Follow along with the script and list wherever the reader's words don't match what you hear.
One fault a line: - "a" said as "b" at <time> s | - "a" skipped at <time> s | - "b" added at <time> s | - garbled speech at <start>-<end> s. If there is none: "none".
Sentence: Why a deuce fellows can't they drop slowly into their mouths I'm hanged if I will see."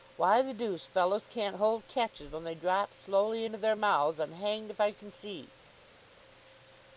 - "a" said as "the" at 0.4 s
- "hold catches when" added at 1.6 s
- "will" said as "can" at 4.9 s